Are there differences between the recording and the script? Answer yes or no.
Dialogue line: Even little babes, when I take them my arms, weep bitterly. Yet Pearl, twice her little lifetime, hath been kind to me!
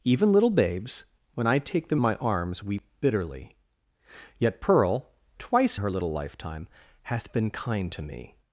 no